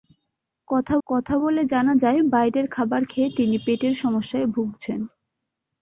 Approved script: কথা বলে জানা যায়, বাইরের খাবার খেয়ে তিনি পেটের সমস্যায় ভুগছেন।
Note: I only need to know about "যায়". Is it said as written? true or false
true